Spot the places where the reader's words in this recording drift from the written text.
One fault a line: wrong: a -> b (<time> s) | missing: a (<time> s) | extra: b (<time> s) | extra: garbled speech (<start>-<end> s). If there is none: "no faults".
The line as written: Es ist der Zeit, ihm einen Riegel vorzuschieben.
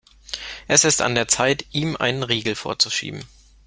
extra: an (1.0 s)